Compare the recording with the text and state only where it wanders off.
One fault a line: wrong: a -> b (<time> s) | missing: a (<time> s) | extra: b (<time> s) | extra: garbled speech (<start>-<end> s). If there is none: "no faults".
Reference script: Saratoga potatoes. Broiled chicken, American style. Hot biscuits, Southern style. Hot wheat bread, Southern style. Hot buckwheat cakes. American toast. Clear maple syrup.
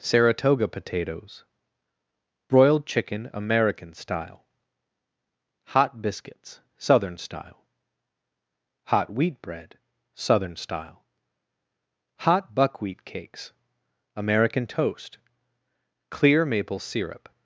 no faults